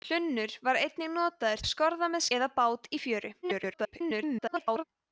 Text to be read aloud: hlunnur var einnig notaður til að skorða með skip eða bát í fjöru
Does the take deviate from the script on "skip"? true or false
true